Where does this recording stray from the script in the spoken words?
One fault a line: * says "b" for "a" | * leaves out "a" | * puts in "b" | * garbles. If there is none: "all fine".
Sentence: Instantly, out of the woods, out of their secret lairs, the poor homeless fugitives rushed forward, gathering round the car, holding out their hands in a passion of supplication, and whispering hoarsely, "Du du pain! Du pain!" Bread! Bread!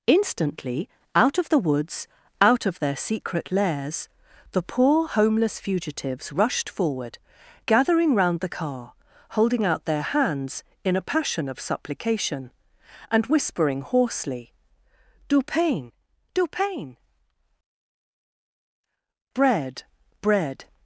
* leaves out "du"